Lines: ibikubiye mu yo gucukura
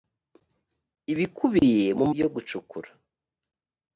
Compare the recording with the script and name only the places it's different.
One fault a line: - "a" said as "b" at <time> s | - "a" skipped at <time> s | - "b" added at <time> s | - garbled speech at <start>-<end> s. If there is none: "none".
none